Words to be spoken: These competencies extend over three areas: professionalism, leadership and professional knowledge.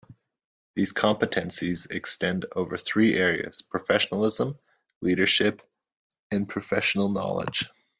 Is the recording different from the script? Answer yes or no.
no